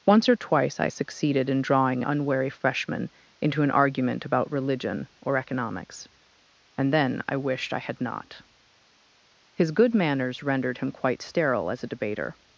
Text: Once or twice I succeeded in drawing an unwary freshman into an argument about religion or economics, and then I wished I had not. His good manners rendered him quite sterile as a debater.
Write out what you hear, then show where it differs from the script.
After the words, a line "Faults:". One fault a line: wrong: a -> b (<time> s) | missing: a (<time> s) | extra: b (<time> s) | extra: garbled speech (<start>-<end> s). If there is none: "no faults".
Once or twice I succeeded in drawing unwary freshman into an argument about religion or economics, and then I wished I had not. His good manners rendered him quite sterile as a debater.
Faults:
missing: an (2.0 s)